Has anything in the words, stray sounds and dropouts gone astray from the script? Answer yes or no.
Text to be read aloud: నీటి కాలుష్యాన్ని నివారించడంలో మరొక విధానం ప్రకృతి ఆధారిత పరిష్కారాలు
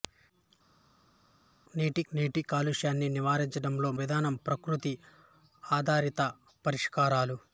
yes